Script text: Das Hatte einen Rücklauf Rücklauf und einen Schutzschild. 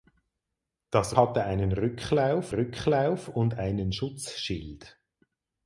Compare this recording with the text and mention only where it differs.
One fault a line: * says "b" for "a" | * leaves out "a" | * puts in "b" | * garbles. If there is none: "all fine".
all fine